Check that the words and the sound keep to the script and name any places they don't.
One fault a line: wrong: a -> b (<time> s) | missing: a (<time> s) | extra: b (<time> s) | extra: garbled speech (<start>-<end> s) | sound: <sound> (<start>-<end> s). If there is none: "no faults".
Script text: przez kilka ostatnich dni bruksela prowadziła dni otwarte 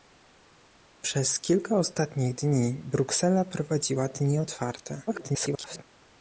extra: garbled speech (5.1-5.8 s)